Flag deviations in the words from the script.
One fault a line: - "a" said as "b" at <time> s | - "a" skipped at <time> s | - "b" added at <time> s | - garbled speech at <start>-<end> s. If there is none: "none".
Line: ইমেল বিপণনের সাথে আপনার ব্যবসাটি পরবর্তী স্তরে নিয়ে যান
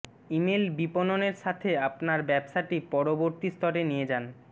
none